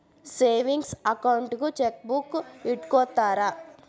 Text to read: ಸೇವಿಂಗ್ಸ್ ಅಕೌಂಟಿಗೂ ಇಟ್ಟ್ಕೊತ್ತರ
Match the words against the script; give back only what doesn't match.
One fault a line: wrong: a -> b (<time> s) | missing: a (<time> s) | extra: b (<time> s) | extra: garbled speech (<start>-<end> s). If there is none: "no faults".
extra: ಚೆಕ್ಬೂಕ್ (1.8 s)